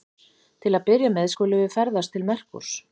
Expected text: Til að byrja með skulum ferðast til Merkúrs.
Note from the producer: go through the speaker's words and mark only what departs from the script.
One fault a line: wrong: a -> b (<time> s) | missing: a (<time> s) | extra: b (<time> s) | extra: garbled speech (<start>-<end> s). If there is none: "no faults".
extra: við (1.6 s)